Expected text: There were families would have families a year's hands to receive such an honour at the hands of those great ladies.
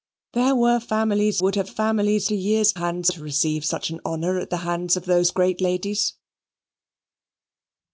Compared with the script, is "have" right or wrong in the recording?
right